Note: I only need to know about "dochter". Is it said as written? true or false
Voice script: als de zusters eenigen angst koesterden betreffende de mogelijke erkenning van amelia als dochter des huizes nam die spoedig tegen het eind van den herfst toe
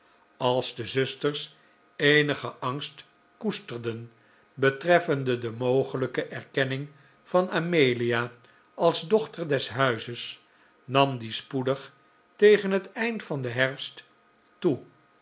true